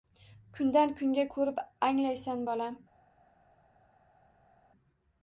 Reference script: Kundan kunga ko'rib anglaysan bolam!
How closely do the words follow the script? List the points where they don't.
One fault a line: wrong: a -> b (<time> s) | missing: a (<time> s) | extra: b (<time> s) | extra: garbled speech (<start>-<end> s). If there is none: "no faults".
no faults